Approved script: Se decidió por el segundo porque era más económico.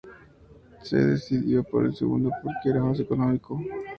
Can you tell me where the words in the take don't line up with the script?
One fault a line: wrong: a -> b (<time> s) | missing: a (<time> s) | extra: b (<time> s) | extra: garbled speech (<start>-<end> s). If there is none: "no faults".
no faults